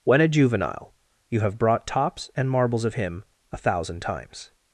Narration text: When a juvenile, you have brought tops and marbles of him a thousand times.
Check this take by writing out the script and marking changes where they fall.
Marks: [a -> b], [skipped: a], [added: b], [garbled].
When a juvenile, you have brought tops and marbles of him a thousand times.